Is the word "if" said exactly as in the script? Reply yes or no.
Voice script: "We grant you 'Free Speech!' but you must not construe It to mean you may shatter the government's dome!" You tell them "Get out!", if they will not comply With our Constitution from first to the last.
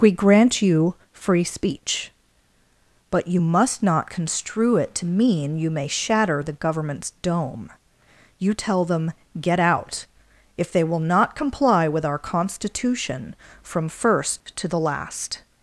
yes